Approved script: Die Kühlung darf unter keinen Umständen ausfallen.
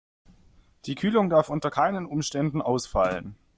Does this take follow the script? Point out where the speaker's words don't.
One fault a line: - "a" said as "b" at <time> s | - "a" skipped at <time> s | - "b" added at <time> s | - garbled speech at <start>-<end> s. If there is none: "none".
none